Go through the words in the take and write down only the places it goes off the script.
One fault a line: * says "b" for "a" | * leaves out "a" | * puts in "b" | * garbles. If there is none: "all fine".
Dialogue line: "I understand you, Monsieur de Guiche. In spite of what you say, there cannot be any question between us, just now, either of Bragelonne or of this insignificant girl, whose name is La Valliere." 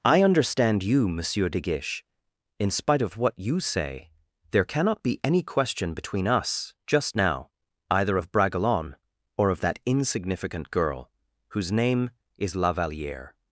* says "that" for "this"